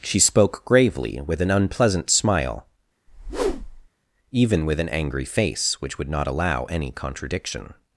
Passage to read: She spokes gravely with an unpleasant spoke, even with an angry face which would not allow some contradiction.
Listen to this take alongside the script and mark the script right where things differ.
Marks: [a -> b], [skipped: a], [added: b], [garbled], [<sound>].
She [spokes -> spoke] gravely with an unpleasant [spoke, -> smile] [whoosh] even with an angry face which would not allow [some -> any] contradiction.